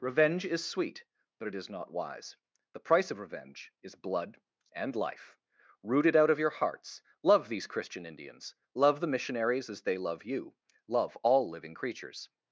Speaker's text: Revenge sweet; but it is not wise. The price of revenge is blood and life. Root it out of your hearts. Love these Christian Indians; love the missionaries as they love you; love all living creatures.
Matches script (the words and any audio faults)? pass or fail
fail